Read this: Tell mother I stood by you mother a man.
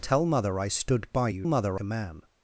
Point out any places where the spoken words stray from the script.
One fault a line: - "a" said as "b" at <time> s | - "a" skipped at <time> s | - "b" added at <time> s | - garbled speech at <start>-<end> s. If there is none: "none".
none